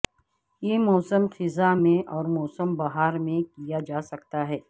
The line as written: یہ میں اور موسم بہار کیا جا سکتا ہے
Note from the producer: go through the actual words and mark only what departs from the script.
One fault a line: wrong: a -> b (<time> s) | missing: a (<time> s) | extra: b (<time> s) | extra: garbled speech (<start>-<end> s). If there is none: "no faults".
extra: موسم خزاں (0.8 s)
extra: میں (3.2 s)